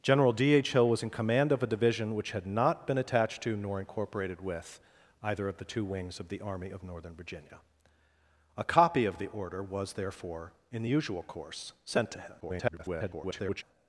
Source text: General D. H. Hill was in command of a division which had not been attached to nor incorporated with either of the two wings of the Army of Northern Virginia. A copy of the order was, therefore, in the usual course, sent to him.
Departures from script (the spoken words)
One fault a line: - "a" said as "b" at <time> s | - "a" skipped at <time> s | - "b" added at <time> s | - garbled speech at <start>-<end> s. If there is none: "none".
- garbled speech at 12.4-13.6 s